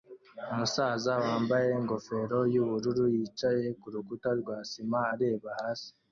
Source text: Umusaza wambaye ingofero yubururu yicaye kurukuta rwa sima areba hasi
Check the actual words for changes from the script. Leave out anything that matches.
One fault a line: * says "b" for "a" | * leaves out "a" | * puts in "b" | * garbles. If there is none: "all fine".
all fine